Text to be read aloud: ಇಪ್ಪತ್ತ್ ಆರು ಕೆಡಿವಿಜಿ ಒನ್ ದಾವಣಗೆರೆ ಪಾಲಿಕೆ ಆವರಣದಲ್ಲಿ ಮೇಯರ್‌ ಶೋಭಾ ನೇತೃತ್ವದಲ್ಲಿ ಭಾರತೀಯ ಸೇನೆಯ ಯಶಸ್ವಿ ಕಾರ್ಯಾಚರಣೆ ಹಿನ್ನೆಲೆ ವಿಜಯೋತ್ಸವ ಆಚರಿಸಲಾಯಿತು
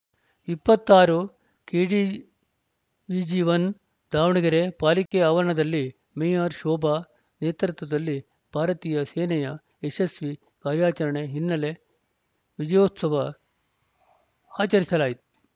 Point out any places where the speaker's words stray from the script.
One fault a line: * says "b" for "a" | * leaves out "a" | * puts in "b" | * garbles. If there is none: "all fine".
all fine